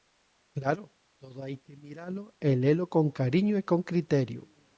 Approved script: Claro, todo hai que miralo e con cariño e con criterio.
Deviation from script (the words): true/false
true